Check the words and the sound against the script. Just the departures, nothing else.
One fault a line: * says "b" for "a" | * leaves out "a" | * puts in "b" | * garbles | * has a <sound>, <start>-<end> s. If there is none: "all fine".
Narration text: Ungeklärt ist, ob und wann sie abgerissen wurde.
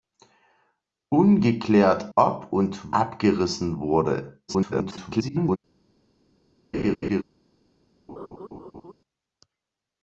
* leaves out "ist"
* leaves out "wann sie"
* garbles
* has a laugh, 6.7-7.2 s
* has a laugh, 8.1-8.9 s